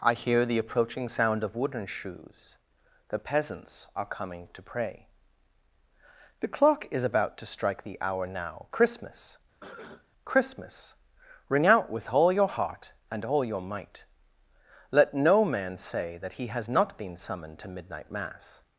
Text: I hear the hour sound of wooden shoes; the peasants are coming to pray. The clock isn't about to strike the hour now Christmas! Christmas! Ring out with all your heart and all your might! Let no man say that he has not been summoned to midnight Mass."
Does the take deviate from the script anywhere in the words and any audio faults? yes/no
yes